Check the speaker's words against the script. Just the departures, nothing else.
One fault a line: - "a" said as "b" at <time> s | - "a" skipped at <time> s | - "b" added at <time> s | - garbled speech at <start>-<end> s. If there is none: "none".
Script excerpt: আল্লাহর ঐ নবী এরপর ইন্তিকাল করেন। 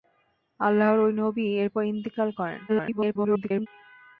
- garbled speech at 2.7-3.7 s